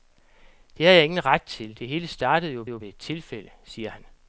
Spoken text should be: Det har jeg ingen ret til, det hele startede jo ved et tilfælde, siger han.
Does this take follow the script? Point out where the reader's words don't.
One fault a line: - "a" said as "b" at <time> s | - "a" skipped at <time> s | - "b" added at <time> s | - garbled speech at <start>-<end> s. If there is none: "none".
- "jo" added at 2.7 s